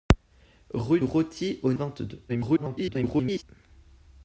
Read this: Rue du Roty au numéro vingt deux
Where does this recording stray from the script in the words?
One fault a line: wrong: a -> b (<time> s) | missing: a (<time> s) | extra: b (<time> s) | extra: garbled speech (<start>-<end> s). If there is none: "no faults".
missing: du (1.0 s)
missing: numéro (1.7 s)
extra: garbled speech (2.3-3.4 s)